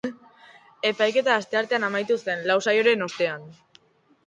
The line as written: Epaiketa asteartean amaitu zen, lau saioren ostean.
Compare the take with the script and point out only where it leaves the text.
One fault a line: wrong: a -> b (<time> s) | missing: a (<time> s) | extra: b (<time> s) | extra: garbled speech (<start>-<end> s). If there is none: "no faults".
no faults